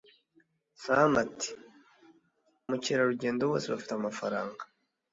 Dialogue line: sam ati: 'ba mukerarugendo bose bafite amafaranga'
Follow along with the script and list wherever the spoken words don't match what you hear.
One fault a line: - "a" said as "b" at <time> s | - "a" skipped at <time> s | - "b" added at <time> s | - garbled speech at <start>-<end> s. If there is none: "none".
- "ba" skipped at 1.5 s